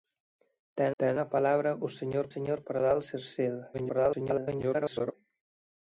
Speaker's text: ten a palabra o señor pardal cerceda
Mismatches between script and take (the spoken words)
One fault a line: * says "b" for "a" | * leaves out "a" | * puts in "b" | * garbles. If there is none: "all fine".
* puts in "ten"
* puts in "señor"
* garbles